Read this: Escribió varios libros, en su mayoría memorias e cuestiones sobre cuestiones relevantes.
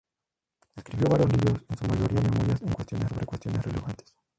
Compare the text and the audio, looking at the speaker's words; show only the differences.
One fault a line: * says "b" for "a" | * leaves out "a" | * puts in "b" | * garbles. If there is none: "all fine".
all fine